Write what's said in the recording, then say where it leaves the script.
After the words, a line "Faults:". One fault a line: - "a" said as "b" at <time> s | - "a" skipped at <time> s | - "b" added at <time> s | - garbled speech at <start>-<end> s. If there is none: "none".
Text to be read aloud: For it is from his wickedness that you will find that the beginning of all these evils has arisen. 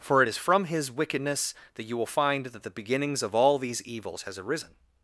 For it is from his wickedness that you will find that the beginnings of all these evils has arisen.
Faults:
- "beginning" said as "beginnings" at 2.7 s